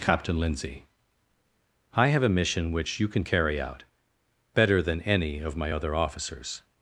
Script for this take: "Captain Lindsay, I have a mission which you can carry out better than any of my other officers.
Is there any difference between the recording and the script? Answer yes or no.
no